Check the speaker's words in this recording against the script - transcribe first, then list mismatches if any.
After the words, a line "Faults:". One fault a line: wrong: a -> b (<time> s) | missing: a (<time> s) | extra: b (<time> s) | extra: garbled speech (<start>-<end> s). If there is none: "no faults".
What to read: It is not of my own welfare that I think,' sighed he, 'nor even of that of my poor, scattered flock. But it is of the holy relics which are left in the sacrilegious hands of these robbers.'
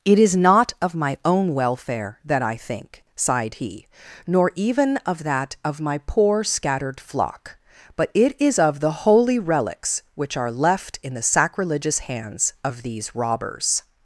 It is not of my own welfare that I think,' sighed he, 'nor even of that of my poor, scattered flock. But it is of the holy relics which are left in the sacrilegious hands of these robbers.'
Faults:
no faults